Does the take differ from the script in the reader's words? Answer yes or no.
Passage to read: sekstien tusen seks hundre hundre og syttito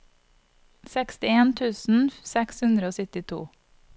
yes